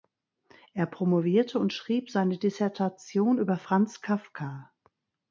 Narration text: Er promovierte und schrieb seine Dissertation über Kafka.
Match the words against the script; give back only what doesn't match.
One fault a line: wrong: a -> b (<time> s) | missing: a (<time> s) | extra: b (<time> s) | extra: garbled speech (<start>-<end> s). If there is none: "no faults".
extra: Franz (3.6 s)